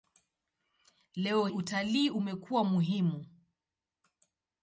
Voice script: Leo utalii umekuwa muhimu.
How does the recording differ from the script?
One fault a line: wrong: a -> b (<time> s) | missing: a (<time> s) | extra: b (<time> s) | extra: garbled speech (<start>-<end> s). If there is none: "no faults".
no faults